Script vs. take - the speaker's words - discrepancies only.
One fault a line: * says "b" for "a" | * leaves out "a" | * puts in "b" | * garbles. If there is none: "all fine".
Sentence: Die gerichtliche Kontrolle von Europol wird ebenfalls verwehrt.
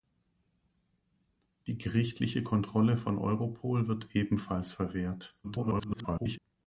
* garbles